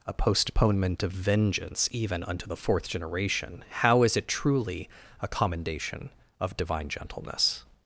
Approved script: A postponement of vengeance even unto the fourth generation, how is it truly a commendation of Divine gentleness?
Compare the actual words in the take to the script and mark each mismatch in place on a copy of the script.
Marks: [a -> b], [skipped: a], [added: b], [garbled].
A postponement of vengeance even unto the fourth generation, how is it truly a commendation of Divine gentleness?